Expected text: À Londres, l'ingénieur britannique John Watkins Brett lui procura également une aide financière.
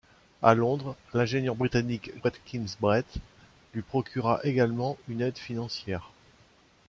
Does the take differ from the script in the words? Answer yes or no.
yes